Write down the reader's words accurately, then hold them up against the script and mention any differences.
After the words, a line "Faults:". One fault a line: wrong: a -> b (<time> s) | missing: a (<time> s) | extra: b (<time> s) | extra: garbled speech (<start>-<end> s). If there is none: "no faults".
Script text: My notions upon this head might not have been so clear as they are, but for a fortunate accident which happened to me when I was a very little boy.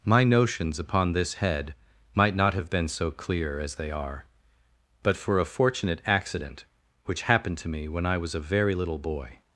My notions upon this head might not have been so clear as they are, but for a fortunate accident which happened to me when I was a very little boy.
Faults:
no faults